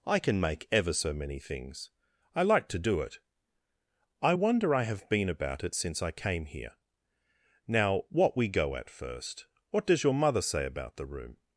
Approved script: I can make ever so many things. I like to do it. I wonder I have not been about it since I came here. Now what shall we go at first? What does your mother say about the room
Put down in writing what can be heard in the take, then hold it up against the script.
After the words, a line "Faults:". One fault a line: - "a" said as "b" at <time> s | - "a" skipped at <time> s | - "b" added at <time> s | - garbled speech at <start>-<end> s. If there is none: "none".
I can make ever so many things. I like to do it. I wonder I have been about it since I came here. Now what we go at first? What does your mother say about the room
Faults:
- "not" skipped at 5.1 s
- "shall" skipped at 8.4 s